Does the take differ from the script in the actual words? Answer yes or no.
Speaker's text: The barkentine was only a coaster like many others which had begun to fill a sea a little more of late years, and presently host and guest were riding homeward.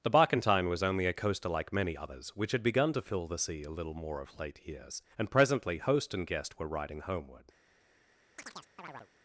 yes